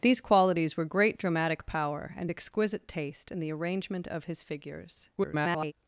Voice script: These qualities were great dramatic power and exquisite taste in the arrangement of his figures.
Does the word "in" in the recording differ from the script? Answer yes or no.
no